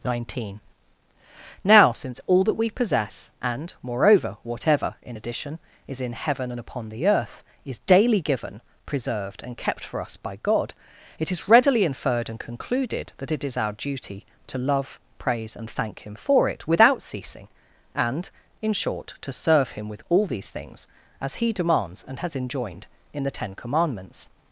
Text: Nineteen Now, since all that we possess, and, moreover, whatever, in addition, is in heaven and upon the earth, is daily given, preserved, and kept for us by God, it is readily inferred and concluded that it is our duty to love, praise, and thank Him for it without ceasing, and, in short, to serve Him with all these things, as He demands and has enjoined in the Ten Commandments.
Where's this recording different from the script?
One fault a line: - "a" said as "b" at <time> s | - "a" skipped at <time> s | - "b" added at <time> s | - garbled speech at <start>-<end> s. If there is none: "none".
none